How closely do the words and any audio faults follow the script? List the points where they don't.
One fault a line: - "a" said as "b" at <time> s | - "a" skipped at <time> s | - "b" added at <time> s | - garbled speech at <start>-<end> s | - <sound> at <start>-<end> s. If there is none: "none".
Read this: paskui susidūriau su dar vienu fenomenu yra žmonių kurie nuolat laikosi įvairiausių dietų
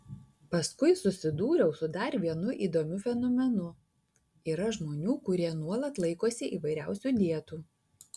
- "įdomiu" added at 2.7 s